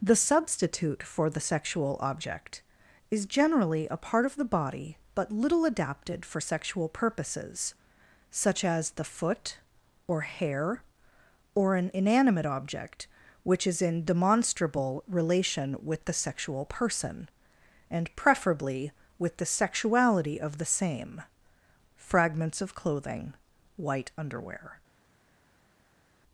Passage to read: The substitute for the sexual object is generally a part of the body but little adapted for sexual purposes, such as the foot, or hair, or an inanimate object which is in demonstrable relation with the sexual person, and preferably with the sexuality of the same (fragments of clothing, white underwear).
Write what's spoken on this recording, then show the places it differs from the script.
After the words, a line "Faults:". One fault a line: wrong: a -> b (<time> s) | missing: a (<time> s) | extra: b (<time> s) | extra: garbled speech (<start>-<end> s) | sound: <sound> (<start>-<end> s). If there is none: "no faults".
The substitute for the sexual object is generally a part of the body but little adapted for sexual purposes, such as the foot, or hair, or an inanimate object which is in demonstrable relation with the sexual person, and preferably with the sexuality of the same (fragments of clothing, white underwear).
Faults:
no faults